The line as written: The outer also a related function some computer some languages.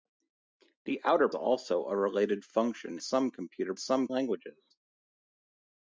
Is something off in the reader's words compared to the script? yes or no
no